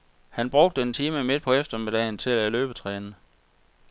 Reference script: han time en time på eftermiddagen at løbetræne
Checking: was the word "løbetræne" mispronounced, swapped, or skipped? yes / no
no